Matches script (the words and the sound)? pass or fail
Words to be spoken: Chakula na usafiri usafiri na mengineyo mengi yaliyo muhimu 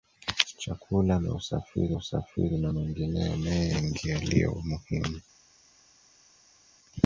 pass